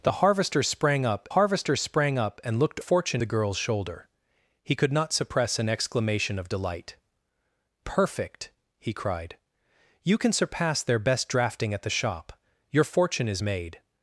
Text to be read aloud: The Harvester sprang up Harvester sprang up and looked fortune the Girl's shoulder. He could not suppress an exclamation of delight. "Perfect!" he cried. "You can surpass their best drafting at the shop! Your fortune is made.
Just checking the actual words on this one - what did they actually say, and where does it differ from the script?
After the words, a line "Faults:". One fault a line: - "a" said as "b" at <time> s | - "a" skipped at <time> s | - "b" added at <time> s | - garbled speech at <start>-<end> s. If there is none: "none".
The Harvester sprang up Harvester sprang up and looked fortune the Girl's shoulder. He could not suppress an exclamation of delight. "Perfect!" he cried. "You can surpass their best drafting at the shop! Your fortune is made.
Faults:
none